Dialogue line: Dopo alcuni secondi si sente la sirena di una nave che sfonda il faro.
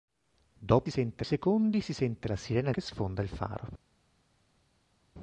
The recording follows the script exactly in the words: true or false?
false